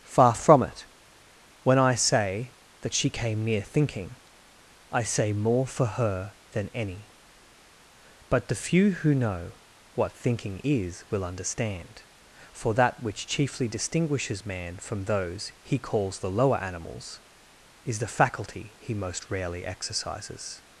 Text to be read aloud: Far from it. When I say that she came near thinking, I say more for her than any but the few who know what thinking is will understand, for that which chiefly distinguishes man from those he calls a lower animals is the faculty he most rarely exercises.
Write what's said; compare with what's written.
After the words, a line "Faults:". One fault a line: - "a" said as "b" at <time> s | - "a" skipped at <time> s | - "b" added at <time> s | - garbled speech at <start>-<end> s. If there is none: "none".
Far from it. When I say that she came near thinking, I say more for her than any but the few who know what thinking is will understand, for that which chiefly distinguishes man from those he calls the lower animals is the faculty he most rarely exercises.
Faults:
- "a" said as "the" at 16.2 s